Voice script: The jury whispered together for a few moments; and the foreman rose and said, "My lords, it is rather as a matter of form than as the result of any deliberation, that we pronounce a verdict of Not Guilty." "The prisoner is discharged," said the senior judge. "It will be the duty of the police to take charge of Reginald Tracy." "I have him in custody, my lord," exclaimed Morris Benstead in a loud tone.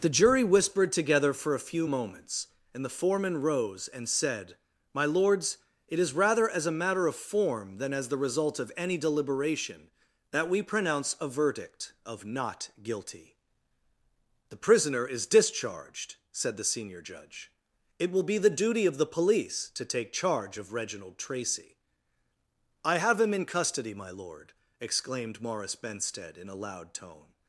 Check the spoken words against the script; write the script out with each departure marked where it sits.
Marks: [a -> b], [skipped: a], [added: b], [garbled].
The jury whispered together for a few moments; and the foreman rose and said, "My lords, it is rather as a matter of form than as the result of any deliberation, that we pronounce a verdict of Not Guilty." "The prisoner is discharged," said the senior judge. "It will be the duty of the police to take charge of Reginald Tracy." "I have him in custody, my lord," exclaimed Morris Benstead in a loud tone.